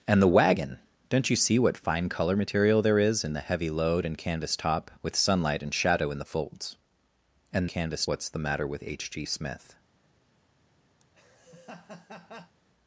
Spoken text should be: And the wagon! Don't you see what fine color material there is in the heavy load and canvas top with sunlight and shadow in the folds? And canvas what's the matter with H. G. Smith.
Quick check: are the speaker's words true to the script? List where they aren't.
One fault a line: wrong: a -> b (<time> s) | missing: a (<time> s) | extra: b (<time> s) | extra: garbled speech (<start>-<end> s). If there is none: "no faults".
no faults